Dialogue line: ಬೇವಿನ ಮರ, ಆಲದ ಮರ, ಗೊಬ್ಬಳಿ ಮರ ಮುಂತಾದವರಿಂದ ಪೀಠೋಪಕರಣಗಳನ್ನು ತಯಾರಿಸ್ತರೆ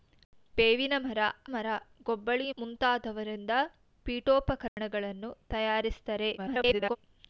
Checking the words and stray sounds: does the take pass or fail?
fail